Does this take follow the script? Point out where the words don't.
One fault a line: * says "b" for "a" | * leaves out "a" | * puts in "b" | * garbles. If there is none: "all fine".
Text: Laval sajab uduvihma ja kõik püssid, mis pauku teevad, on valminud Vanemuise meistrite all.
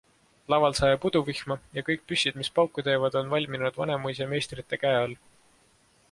* puts in "käe"